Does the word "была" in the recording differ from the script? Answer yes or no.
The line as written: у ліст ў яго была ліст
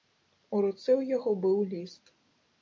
yes